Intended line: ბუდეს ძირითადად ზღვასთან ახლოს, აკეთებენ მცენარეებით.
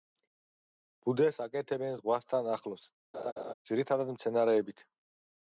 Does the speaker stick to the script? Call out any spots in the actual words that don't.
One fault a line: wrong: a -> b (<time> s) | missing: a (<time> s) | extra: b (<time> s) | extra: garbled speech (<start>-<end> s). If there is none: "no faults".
wrong: ძირითადად -> აკეთებენ (1.4 s)
wrong: აკეთებენ -> ძირითადად (3.7 s)